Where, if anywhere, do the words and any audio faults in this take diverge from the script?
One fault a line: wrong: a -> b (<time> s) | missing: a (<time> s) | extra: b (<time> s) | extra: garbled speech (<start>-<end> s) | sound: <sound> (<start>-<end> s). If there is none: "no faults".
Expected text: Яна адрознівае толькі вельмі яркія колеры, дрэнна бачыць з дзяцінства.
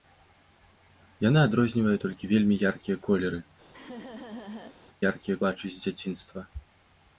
sound: laugh (3.7-4.8 s)
wrong: дрэнна -> яркія (5.1 s)